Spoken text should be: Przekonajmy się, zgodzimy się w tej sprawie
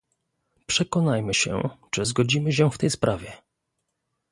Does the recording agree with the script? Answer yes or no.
no